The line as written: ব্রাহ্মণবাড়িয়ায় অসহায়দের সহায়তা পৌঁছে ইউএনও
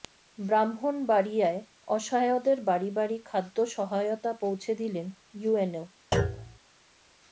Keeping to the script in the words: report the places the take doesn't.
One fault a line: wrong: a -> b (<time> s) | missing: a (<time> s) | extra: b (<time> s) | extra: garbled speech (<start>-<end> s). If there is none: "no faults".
extra: বাড়ি বাড়ি খাদ্য (2.6 s)
extra: দিলেন (4.8 s)